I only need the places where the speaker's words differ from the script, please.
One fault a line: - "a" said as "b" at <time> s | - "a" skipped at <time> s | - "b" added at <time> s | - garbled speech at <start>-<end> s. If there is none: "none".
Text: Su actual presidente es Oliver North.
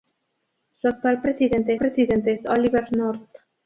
- "presidente" added at 1.8 s